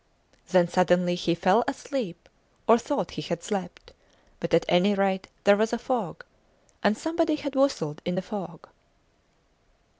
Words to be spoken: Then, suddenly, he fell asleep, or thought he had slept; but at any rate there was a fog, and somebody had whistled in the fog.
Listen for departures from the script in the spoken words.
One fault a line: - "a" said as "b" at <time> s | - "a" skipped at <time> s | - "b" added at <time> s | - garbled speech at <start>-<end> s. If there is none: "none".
none